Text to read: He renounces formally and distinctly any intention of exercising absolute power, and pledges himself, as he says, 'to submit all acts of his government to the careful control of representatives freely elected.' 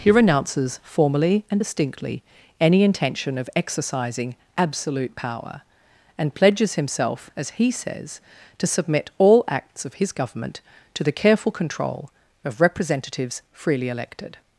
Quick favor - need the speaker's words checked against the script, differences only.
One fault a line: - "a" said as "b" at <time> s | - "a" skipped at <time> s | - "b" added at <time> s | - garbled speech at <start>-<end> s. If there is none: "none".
none